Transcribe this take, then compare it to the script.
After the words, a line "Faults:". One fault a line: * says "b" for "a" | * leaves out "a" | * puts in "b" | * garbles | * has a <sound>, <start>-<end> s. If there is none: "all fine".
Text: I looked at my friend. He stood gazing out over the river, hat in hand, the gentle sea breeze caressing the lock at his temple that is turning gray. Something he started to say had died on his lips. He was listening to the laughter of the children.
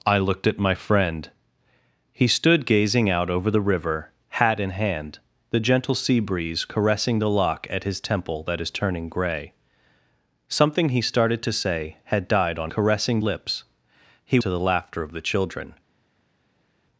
I looked at my friend. He stood gazing out over the river, hat in hand, the gentle sea breeze caressing the lock at his temple that is turning gray. Something he started to say had died on caressing lips. He to the laughter of the children.
Faults:
* says "caressing" for "his"
* leaves out "was listening"